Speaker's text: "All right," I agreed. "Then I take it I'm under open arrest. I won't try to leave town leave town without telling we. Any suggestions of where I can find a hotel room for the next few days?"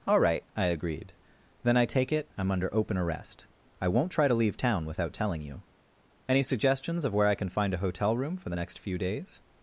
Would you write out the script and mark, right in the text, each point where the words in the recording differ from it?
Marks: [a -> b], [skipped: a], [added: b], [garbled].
"All right," I agreed. "Then I take it I'm under open arrest. I won't try to leave town [skipped: leave town] without telling [we. -> you] Any suggestions of where I can find a hotel room for the next few days?"